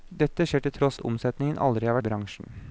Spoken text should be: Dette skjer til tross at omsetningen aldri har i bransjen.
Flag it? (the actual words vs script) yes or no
no